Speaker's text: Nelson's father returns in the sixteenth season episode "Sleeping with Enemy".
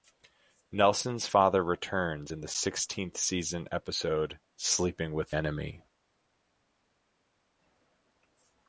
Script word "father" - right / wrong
right